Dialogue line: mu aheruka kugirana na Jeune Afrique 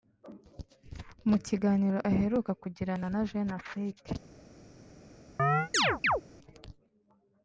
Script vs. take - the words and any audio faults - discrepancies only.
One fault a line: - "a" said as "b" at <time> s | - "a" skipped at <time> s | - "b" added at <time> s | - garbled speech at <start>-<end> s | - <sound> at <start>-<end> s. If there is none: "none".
- "kiganiro" added at 1.4 s
- chirp at 5.4-6.2 s